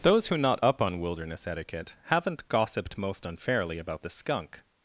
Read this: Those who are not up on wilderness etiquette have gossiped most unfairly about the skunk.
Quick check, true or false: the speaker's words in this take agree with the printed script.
false